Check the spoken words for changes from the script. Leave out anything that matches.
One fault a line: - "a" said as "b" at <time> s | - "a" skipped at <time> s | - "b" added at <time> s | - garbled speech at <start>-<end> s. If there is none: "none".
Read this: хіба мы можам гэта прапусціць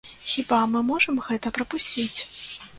none